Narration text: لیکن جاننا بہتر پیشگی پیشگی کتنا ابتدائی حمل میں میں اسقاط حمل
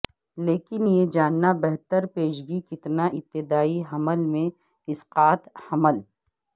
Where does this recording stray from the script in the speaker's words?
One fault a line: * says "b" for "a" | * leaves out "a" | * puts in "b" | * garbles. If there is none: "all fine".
* puts in "یہ"
* leaves out "پیشگی"
* leaves out "میں"